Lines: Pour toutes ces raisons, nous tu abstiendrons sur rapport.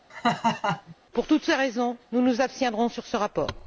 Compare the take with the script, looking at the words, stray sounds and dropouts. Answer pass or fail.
fail